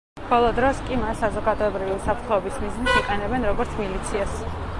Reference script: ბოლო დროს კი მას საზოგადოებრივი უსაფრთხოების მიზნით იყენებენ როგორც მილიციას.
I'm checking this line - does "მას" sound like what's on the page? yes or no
yes